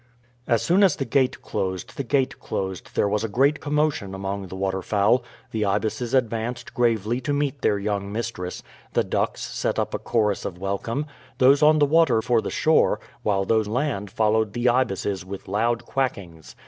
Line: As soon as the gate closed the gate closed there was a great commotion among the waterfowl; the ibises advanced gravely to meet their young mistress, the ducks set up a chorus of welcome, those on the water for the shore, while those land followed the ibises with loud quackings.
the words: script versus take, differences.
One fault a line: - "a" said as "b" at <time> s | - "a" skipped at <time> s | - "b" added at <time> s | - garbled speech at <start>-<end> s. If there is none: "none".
none